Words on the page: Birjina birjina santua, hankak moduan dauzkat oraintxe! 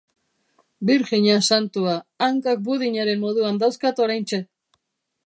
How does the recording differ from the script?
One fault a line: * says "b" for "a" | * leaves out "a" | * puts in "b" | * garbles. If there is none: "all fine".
* leaves out "birjina"
* puts in "budinaren"